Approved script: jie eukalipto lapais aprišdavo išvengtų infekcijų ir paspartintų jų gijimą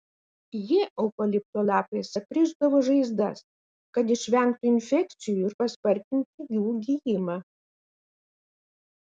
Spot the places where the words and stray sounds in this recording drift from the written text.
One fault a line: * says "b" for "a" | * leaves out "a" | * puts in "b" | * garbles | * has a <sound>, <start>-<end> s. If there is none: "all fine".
* puts in "žaizdas kad"